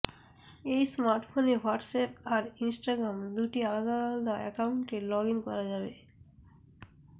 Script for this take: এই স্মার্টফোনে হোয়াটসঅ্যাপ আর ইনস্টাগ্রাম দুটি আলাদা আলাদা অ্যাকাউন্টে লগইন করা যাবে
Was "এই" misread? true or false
false